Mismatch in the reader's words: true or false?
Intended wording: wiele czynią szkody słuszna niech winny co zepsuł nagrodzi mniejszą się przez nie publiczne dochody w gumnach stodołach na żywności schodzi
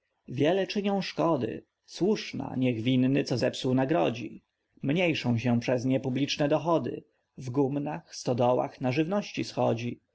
false